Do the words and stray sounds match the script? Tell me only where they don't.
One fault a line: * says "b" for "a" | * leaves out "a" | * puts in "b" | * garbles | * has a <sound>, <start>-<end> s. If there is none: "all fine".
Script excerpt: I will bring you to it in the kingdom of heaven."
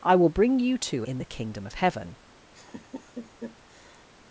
* leaves out "it"
* has a laugh, 2.5-4.1 s